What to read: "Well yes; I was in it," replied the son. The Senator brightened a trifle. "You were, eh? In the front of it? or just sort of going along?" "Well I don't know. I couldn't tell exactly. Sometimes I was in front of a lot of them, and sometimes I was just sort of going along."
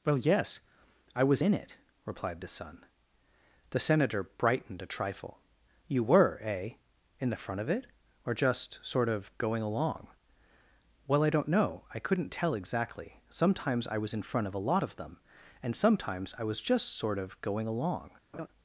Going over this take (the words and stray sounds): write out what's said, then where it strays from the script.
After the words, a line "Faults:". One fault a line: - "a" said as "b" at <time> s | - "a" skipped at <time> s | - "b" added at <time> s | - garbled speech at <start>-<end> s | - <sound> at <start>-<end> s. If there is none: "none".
"Well yes; I was in it," replied the son. The Senator brightened a trifle. "You were, eh? In the front of it? or just sort of going along?" "Well I don't know. I couldn't tell exactly. Sometimes I was in front of a lot of them, and sometimes I was just sort of going along."
Faults:
- laugh at 18.3-18.5 s